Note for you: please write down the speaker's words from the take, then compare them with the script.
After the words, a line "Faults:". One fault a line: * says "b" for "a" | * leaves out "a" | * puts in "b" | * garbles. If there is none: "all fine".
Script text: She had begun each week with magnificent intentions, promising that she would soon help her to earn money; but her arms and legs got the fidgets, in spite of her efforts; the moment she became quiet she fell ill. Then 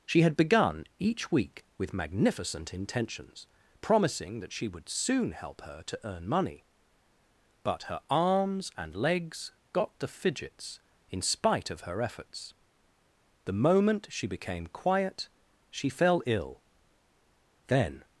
She had begun each week with magnificent intentions, promising that she would soon help her to earn money; but her arms and legs got the fidgets, in spite of her efforts; the moment she became quiet she fell ill. Then
Faults:
all fine